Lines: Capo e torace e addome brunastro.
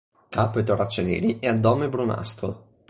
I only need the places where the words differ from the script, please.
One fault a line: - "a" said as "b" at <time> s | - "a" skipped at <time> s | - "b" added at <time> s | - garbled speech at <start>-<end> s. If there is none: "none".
- "neri" added at 1.0 s